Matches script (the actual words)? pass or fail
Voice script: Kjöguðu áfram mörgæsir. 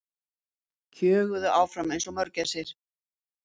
fail